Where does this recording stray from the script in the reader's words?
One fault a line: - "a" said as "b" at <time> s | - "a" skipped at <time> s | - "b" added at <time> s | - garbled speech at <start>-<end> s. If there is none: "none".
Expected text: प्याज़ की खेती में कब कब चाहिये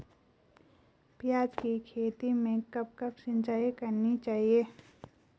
- "सिंचाई करनी" added at 3.1 s